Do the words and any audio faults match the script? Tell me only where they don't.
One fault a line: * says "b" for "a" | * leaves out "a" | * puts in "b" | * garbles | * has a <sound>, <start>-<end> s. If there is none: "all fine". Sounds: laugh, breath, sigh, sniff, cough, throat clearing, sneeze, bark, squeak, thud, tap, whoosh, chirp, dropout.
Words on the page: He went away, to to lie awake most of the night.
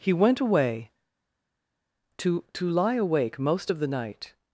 all fine